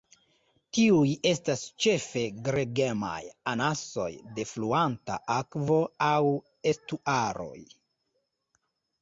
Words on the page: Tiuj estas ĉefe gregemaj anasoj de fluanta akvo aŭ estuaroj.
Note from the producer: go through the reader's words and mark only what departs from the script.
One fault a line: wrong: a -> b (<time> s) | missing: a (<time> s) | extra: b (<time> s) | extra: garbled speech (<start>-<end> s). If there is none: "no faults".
no faults